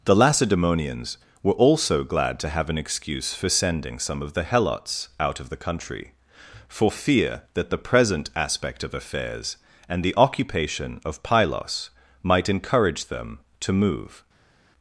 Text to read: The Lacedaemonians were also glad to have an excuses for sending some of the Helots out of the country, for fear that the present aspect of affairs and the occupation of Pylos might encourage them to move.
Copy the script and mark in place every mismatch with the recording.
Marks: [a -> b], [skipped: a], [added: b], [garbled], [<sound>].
The Lacedaemonians were also glad to have an [excuses -> excuse] for sending some of the Helots out of the country, for fear that the present aspect of affairs and the occupation of Pylos might encourage them to move.